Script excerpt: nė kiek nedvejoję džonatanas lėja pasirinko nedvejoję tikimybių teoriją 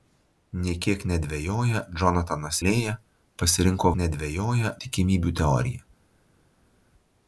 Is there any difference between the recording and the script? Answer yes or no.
no